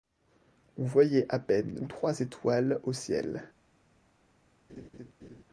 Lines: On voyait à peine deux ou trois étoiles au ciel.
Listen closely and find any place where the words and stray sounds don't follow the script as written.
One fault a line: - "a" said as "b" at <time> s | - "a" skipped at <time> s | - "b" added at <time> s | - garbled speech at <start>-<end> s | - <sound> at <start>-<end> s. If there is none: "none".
- "deux" skipped at 1.8 s
- laugh at 4.7-5.4 s